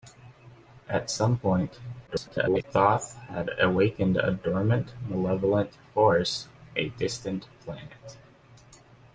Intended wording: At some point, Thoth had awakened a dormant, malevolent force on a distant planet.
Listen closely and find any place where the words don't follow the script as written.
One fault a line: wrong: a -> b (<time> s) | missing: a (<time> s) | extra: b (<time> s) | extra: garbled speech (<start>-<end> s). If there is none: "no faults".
extra: garbled speech (2.1-2.6 s)
missing: on (6.5 s)